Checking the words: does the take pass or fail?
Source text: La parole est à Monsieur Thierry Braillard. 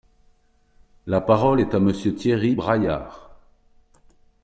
pass